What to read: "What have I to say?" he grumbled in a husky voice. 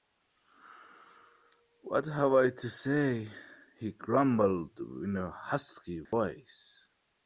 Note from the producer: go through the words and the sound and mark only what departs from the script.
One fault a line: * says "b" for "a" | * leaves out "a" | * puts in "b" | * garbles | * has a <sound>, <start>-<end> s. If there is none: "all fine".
* has a dropout, 6.1-6.1 s